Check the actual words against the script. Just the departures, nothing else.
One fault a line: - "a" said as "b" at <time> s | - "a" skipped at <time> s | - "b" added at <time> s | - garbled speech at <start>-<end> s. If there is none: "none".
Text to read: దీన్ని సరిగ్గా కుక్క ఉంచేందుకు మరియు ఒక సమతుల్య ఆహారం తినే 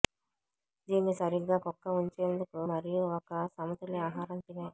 none